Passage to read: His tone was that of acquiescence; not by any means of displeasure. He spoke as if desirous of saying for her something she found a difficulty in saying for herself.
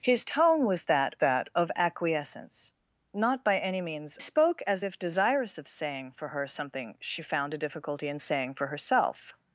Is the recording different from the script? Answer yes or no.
yes